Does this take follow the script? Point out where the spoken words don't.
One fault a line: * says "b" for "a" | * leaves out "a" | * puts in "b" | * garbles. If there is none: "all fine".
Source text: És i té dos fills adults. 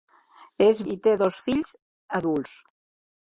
all fine